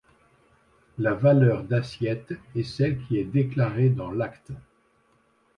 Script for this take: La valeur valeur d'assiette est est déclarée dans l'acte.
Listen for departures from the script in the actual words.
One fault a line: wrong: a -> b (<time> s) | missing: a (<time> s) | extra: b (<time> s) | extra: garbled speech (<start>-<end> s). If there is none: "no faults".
missing: valeur (1.6 s)
extra: celle qui (2.6 s)